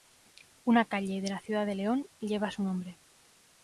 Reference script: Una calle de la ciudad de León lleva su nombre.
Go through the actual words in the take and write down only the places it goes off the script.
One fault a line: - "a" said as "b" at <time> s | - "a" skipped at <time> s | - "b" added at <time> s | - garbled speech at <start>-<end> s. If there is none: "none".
none